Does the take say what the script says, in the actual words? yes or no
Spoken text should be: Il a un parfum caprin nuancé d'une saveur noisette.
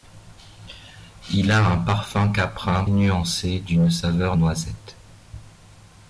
yes